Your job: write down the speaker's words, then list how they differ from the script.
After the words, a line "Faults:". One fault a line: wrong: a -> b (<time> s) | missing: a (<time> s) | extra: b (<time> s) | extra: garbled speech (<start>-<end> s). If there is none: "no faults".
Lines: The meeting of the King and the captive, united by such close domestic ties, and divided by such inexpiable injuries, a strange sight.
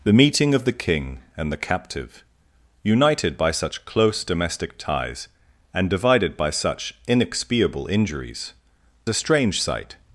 The meeting of the King and the captive, united by such close domestic ties, and divided by such inexpiable injuries, a strange sight.
Faults:
no faults